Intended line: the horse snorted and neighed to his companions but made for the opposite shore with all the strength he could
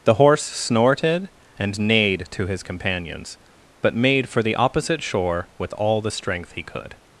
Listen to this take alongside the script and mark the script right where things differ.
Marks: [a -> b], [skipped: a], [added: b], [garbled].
the horse snorted and neighed to his companions but made for the opposite shore with all the strength he could